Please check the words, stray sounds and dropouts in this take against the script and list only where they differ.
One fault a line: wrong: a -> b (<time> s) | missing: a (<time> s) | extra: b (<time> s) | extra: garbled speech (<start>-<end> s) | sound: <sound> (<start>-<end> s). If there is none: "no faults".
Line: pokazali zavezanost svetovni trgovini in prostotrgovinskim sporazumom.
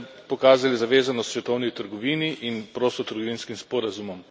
no faults